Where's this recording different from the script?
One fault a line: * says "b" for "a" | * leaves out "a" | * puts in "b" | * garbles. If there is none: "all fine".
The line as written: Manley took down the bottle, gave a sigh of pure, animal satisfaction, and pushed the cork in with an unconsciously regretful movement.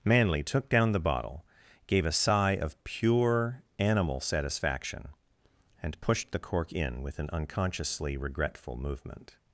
all fine